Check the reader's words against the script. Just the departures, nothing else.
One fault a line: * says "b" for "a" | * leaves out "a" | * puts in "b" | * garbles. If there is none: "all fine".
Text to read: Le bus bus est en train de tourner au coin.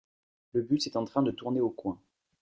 * leaves out "bus"